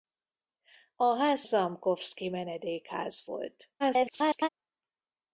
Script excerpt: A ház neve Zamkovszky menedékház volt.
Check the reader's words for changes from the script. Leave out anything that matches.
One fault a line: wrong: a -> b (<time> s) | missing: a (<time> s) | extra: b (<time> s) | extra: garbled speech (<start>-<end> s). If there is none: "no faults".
missing: neve (1.4 s)
extra: garbled speech (3.8-4.5 s)